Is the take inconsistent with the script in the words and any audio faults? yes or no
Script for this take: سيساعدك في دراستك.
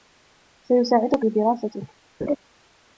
yes